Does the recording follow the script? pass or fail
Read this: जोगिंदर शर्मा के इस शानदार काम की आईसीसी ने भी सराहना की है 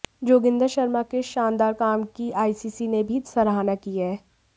pass